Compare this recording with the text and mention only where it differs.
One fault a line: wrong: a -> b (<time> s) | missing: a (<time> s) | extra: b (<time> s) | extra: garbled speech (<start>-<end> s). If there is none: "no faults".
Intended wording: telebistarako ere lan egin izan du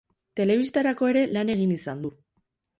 no faults